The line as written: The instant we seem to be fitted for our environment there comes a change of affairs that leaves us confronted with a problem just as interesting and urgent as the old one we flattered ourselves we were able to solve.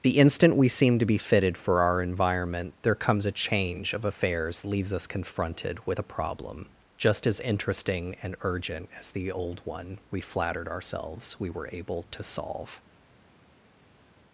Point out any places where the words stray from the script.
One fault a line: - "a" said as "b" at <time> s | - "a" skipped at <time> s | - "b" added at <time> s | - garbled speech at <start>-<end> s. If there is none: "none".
- "that" skipped at 4.6 s